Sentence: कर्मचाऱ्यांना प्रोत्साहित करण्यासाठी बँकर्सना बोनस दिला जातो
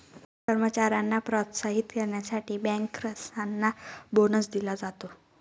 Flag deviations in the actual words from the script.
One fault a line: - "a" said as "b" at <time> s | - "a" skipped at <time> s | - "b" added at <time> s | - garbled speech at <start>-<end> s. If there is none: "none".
none